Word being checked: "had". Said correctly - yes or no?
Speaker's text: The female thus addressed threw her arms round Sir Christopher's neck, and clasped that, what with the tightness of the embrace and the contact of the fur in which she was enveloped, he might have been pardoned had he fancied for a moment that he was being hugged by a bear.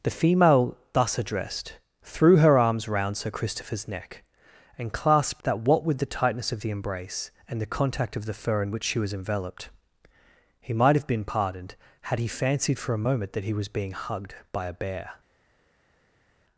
yes